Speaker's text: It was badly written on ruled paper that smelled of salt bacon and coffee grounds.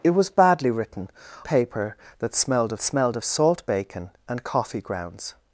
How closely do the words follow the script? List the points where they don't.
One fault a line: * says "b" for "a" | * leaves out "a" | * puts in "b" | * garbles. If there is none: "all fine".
* says "paper that smelled of" for "on ruled paper that"